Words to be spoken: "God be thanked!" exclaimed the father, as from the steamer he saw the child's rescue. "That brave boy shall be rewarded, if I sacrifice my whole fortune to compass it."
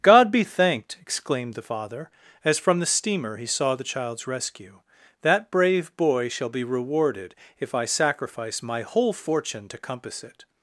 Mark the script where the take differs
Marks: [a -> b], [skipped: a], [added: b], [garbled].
"God be thanked!" exclaimed the father, as from the steamer he saw the child's rescue. "That brave boy shall be rewarded, if I sacrifice my whole fortune to compass it."